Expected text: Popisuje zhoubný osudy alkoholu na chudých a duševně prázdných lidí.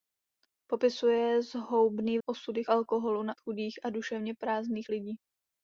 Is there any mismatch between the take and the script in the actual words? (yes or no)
no